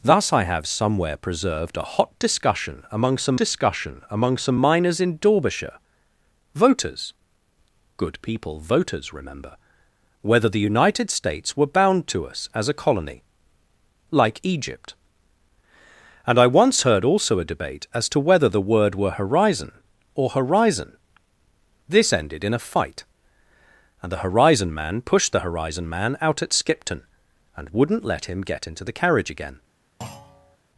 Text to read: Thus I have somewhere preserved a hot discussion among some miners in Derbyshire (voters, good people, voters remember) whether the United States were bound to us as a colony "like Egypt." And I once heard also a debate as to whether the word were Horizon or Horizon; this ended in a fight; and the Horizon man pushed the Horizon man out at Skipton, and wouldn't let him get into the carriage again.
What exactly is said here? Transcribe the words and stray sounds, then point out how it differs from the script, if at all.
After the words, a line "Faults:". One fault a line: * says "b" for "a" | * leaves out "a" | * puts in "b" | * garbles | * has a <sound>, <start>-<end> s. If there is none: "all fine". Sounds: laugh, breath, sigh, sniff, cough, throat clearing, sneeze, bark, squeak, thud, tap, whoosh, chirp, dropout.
Thus I have somewhere preserved a hot discussion among some discussion among some miners in Derbyshire (voters, good people, voters remember) whether the United States were bound to us as a colony "like Egypt." And I once heard also a debate as to whether the word were Horizon or Horizon; this ended in a fight; and the Horizon man pushed the Horizon man out at Skipton, and wouldn't let him get into the carriage again.
Faults:
* puts in "discussion among some"
* has a thud, 30.0-30.6 s